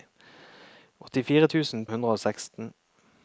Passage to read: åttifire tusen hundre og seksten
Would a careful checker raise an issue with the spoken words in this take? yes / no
no